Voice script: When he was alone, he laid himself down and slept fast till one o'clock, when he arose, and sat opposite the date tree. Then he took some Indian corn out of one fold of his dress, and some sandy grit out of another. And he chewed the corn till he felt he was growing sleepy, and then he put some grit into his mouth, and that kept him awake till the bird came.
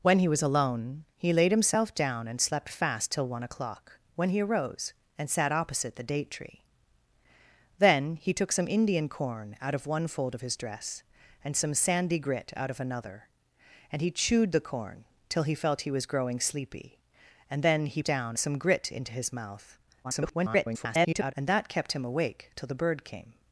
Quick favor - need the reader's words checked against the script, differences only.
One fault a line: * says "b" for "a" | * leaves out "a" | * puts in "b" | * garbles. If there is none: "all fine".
* says "down" for "put"
* garbles